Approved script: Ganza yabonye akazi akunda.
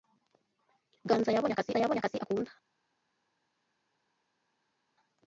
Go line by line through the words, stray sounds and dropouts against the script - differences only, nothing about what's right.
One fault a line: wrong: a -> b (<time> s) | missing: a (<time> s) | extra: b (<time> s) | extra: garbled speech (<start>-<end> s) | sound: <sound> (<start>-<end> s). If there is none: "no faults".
extra: yabonye akazi (1.8 s)